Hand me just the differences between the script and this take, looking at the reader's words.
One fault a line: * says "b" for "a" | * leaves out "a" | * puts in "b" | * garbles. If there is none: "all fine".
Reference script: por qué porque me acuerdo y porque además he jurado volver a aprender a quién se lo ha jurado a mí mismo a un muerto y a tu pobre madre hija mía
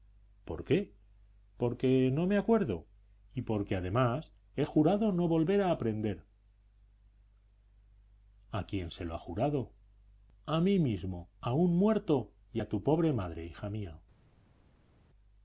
* puts in "no"
* puts in "no"